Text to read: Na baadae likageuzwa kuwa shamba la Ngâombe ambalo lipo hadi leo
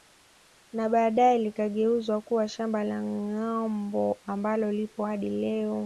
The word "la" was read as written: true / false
true